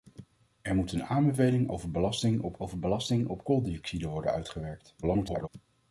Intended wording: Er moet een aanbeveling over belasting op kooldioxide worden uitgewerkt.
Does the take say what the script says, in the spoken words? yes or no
no